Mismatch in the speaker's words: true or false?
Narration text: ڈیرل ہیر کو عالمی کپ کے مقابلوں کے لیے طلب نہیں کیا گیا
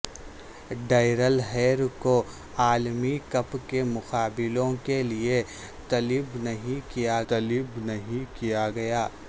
true